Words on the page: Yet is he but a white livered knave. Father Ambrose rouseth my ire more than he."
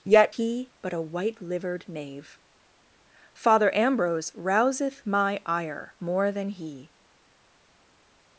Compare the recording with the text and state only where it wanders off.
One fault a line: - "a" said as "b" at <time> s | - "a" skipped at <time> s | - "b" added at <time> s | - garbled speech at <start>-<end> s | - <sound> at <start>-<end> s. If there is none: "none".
- "is" skipped at 0.3 s